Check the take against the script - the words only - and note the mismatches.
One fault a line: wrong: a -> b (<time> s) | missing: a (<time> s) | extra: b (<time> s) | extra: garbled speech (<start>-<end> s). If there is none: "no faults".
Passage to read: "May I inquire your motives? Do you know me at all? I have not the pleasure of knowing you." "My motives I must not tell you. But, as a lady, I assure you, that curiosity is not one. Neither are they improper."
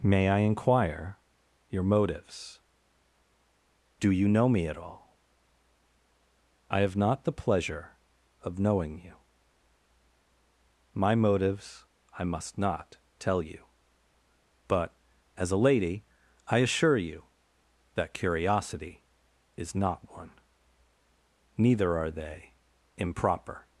no faults